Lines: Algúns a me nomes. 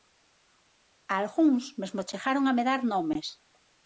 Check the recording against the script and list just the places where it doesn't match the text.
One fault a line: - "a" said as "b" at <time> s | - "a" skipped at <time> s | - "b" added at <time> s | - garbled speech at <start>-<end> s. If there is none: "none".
- "mesmo chegaron" added at 1.8 s
- "dar" added at 2.7 s